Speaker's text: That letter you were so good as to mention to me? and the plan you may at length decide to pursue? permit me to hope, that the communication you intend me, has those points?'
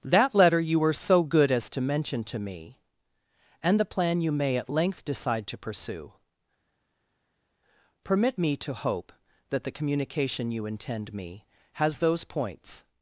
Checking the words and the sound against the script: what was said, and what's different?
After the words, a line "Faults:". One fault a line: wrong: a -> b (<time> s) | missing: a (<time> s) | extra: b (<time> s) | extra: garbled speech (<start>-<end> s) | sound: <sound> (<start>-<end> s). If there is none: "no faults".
That letter you were so good as to mention to me? and the plan you may at length decide to pursue? permit me to hope, that the communication you intend me, has those points?'
Faults:
no faults